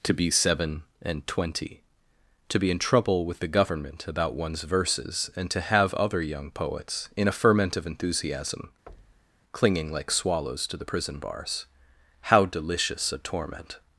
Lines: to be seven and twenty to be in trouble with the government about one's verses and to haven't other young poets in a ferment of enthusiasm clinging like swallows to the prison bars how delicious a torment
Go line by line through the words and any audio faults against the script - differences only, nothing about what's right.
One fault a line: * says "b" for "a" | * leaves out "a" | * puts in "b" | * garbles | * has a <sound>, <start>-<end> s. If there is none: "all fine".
* says "have" for "haven't"
* has a thud, 8.9-9.4 s